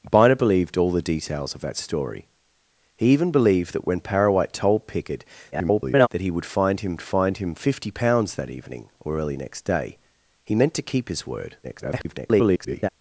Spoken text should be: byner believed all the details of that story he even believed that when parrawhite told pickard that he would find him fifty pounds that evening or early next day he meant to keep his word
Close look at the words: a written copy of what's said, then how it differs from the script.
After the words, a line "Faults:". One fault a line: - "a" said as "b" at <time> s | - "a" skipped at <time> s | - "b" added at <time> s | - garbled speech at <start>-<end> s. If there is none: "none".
byner believed all the details of that story he even believed that when parrawhite told pickard [garbled] that he would find him find him fifty pounds that evening or early next day he meant to keep his word [garbled]
Faults:
- garbled speech at 5.5-6.1 s
- "find him" added at 7.0 s
- garbled speech at 11.6-12.9 s